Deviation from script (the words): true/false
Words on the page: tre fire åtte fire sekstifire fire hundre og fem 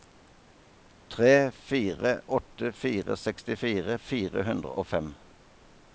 false